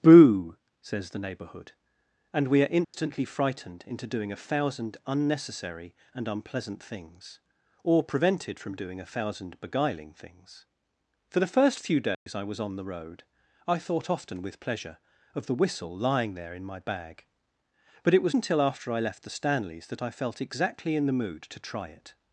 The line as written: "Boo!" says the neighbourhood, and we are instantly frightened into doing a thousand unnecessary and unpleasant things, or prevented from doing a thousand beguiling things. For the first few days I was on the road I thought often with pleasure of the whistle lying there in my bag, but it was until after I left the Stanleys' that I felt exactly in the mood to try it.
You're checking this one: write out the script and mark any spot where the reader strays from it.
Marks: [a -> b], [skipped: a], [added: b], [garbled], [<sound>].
"Boo!" says the neighbourhood, and we are instantly [dropout] frightened into doing a thousand unnecessary and unpleasant things, or prevented from doing a thousand beguiling things. For the first few days [dropout] I was on the road I thought often with pleasure of the whistle lying there in my bag, but it was until after I left the Stanleys' that I felt exactly in the mood to try it.